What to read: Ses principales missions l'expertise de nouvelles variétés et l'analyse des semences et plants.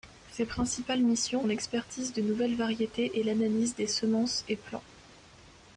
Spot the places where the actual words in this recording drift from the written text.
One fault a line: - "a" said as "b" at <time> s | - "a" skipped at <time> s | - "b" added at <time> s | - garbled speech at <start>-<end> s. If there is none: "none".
none